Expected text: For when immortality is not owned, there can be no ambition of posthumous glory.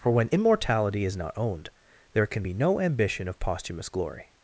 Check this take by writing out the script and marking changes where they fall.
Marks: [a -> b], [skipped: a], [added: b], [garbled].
For when immortality is not owned, there can be no ambition of posthumous glory.